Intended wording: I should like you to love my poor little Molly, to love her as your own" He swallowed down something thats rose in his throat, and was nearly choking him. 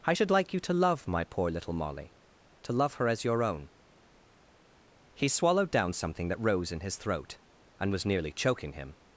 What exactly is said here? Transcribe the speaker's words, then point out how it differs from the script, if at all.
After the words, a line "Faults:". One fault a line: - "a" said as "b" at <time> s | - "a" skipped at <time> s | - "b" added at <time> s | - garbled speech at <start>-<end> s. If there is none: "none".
I should like you to love my poor little Molly, to love her as your own" He swallowed down something that rose in his throat, and was nearly choking him.
Faults:
- "thats" said as "that" at 6.3 s